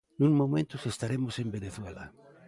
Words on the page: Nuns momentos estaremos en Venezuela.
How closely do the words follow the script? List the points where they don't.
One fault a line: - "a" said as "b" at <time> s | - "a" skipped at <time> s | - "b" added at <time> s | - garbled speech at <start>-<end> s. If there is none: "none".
none